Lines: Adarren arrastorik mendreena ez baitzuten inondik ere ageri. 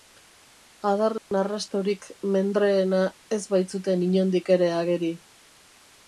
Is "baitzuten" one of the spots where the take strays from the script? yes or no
no